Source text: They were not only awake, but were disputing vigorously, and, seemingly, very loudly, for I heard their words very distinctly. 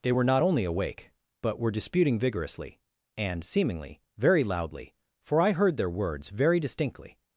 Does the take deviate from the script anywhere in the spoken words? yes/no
no